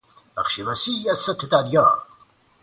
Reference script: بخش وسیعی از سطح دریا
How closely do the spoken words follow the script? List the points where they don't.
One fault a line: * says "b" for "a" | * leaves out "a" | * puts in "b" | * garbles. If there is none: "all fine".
all fine